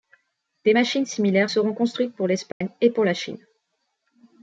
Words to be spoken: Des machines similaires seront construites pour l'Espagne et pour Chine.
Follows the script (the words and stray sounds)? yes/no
no